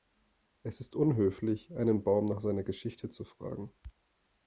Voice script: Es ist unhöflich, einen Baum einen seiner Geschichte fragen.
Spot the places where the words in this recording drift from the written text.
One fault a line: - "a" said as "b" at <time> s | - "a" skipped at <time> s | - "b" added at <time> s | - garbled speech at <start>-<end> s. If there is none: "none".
- "einen" said as "nach" at 2.2 s
- "zu" added at 3.1 s